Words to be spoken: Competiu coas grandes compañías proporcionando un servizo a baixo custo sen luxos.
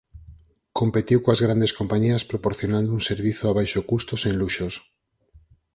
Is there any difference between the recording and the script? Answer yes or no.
no